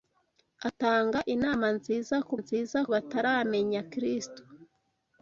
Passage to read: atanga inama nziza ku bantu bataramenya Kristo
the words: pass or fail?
fail